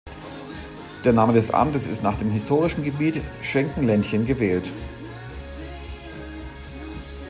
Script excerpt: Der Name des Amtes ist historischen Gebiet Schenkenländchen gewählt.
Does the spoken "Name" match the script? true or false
true